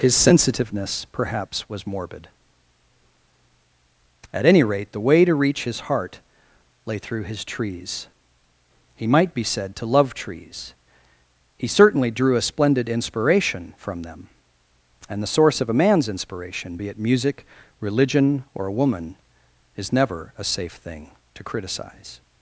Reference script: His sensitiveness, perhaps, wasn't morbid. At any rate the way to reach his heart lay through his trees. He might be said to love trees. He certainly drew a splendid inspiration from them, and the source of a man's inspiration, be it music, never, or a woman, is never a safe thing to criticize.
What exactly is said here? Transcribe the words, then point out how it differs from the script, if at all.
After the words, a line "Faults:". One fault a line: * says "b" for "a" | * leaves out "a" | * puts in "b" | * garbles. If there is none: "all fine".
His sensitiveness, perhaps, was morbid. At any rate the way to reach his heart lay through his trees. He might be said to love trees. He certainly drew a splendid inspiration from them, and the source of a man's inspiration, be it music, religion, or a woman, is never a safe thing to criticize.
Faults:
* says "was" for "wasn't"
* says "religion" for "never"